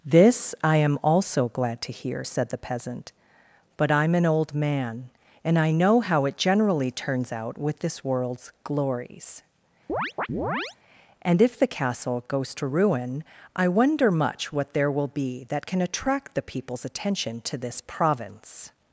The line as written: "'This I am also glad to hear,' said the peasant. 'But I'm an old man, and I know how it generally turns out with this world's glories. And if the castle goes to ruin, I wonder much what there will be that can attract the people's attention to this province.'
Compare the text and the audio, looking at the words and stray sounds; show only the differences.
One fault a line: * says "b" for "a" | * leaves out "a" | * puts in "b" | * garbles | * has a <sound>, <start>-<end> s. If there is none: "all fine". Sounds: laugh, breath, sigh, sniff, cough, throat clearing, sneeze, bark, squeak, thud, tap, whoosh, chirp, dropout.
* has a chirp, 9.9-10.8 s